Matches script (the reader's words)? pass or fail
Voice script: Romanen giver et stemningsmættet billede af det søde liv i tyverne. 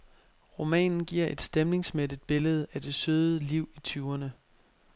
pass